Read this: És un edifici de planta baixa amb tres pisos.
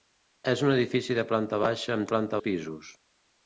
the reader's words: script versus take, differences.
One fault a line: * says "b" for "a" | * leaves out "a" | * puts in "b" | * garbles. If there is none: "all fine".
* says "planta" for "tres"